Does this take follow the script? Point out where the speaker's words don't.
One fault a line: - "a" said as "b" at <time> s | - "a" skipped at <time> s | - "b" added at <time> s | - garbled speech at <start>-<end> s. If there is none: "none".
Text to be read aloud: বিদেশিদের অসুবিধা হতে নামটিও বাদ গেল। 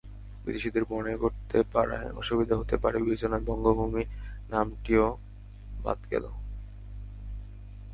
- "মনে করতে পারায়" added at 0.9 s
- "পারে বিবেচনায় বঙ্গভূমি" added at 2.8 s